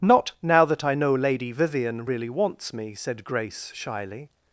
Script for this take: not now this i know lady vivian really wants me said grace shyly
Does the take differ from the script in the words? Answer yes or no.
yes